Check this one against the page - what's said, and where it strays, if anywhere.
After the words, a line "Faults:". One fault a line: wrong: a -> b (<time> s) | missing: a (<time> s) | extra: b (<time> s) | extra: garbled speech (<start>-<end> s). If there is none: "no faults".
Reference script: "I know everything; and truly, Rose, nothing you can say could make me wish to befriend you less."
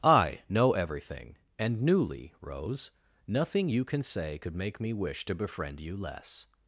"I know everything; and newly, Rose, nothing you can say could make me wish to befriend you less."
Faults:
wrong: truly -> newly (1.8 s)